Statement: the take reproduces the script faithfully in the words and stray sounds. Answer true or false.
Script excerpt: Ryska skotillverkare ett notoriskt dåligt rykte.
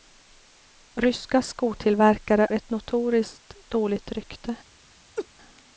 false